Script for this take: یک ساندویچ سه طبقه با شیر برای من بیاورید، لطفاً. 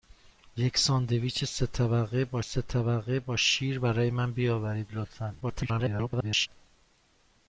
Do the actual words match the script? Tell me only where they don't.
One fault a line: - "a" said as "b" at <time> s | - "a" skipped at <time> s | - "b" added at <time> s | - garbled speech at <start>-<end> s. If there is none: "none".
- "سه طبقه با" added at 2.4 s
- garbled speech at 5.4-6.5 s